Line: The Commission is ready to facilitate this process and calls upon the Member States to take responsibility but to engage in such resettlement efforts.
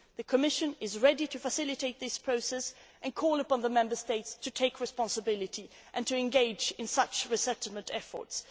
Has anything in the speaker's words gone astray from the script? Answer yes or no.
yes